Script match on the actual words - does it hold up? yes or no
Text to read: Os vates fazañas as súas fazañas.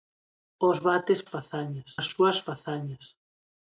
yes